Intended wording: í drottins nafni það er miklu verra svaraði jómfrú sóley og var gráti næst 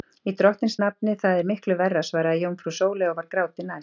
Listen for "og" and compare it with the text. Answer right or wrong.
right